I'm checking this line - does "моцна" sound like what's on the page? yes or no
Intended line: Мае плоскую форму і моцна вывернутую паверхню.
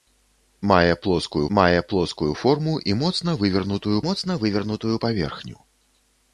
yes